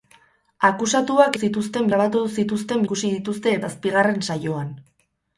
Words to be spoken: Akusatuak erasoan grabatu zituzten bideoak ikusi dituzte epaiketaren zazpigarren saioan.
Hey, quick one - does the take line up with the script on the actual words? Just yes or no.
no